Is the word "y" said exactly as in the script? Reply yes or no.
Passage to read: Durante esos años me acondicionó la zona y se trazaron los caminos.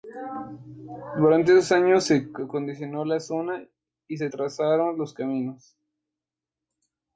yes